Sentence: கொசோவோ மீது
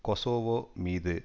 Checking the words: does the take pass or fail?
pass